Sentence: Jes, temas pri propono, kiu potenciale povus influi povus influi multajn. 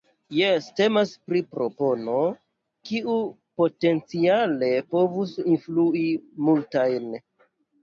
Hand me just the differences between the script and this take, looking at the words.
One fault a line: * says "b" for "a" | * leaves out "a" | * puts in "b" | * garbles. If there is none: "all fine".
* leaves out "povus influi"